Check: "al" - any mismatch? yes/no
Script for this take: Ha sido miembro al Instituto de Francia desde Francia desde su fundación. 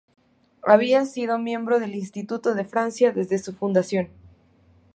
yes